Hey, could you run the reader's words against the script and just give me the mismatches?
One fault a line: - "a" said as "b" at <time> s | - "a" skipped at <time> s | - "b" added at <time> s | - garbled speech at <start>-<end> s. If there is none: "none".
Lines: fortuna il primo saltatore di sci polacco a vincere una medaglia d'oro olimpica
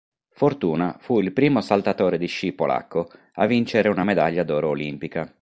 - "fu" added at 1.0 s